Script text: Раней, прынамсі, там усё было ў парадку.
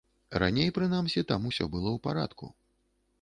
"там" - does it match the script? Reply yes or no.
yes